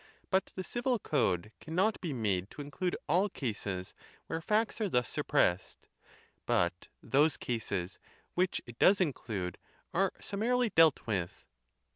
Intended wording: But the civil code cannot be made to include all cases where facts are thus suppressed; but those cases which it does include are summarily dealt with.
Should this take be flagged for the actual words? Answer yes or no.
no